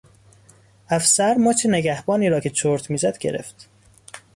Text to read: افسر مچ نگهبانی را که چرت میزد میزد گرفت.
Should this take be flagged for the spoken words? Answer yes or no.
yes